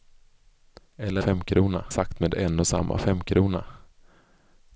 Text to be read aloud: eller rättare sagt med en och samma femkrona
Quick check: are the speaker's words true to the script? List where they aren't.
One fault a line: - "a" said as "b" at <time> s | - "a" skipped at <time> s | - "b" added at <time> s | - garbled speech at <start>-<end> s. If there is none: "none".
- "rättare" said as "femkrona" at 1.2 s